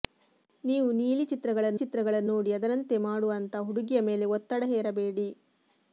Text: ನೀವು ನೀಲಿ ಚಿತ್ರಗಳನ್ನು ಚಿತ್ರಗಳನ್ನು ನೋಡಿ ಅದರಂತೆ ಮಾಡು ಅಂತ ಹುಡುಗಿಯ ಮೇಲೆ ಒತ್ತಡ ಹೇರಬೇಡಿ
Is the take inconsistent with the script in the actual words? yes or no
no